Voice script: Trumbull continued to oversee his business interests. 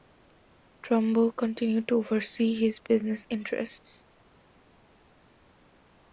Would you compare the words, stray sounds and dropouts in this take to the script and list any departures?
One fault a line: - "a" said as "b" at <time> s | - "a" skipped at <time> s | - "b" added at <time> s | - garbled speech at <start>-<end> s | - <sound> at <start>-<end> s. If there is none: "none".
none